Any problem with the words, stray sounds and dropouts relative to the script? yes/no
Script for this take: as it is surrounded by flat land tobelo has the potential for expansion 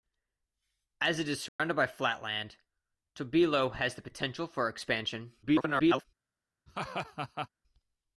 yes